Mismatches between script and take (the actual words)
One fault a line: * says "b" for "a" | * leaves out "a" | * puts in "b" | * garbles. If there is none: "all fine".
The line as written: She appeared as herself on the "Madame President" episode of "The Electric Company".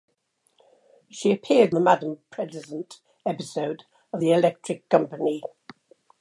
* leaves out "as herself on"